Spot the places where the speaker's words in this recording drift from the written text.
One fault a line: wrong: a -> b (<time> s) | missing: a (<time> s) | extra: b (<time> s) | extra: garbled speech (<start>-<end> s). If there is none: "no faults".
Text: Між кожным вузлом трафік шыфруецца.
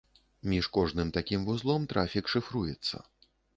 extra: такім (1.2 s)